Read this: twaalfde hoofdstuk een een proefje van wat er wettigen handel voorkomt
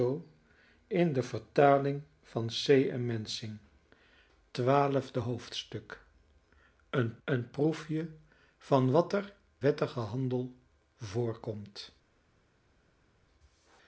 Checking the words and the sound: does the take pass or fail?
pass